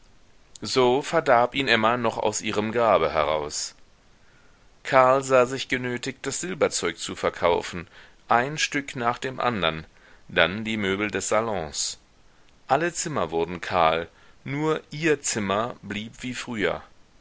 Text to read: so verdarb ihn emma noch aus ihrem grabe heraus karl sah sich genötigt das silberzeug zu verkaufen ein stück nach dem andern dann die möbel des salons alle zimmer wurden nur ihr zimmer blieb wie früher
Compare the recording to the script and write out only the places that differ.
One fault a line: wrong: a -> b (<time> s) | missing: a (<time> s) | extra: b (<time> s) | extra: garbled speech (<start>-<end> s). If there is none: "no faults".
extra: kahl (13.6 s)